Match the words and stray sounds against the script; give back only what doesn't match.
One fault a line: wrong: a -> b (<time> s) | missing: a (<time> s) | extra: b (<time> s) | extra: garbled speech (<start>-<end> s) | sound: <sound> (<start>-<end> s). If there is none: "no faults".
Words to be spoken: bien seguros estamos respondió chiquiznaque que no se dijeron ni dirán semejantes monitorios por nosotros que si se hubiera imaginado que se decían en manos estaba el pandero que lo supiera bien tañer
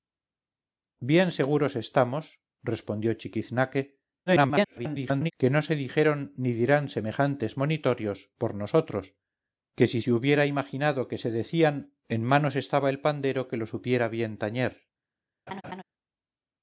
extra: garbled speech (4.3-5.3 s)
sound: laugh (15.5-15.8 s)